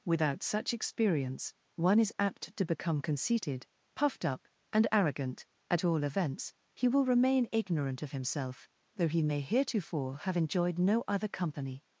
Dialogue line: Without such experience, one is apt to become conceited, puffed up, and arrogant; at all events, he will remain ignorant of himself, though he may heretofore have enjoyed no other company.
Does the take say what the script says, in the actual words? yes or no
yes